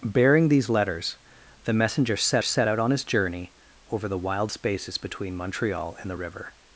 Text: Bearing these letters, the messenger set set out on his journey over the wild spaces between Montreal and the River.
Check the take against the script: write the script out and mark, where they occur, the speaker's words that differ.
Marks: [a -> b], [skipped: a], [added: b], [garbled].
Bearing these letters, the messenger set set out on his journey over the wild spaces between Montreal and the River.